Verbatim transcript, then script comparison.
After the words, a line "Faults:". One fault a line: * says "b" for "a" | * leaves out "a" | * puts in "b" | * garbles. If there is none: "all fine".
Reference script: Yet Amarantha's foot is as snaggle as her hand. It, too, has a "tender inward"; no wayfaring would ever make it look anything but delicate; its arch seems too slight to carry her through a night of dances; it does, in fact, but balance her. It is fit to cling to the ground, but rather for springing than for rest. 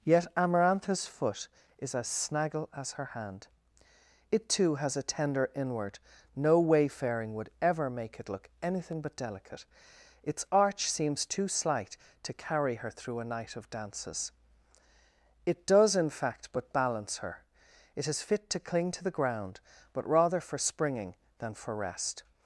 Yet Amarantha's foot is as snaggle as her hand. It, too, has a "tender inward"; no wayfaring would ever make it look anything but delicate; its arch seems too slight to carry her through a night of dances; it does, in fact, but balance her. It is fit to cling to the ground, but rather for springing than for rest.
Faults:
all fine